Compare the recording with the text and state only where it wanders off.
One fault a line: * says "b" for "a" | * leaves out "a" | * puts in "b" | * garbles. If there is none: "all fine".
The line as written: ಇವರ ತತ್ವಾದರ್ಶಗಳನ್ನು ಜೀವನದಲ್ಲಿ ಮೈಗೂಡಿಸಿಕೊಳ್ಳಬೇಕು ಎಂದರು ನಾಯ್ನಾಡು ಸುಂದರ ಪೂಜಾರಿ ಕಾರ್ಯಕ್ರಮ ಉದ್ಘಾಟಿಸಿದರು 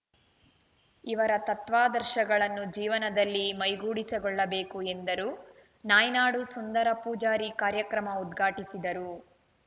all fine